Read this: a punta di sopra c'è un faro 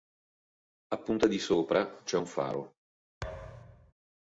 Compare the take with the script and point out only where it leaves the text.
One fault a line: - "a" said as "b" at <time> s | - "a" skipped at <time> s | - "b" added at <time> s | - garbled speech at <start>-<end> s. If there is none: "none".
none